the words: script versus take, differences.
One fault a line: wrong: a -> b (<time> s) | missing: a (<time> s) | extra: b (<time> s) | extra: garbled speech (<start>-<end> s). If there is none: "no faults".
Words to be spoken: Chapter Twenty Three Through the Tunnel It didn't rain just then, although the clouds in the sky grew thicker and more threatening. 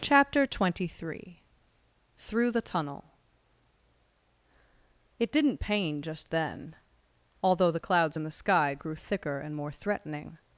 wrong: rain -> pain (5.6 s)